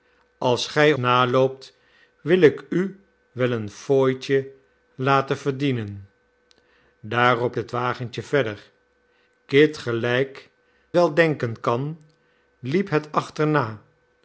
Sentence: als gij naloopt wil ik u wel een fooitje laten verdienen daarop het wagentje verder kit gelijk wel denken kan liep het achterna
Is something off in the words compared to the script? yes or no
no